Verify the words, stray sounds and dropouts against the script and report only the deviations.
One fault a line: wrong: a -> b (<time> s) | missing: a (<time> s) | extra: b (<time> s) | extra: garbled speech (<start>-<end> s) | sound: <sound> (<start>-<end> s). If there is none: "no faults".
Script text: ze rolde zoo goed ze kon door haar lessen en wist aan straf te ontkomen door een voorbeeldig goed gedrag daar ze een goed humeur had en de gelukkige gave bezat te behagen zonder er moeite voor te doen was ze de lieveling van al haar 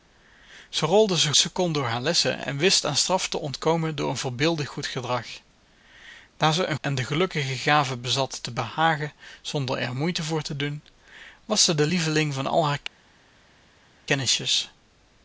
missing: goed (1.3 s)
missing: goed humeur had (6.8 s)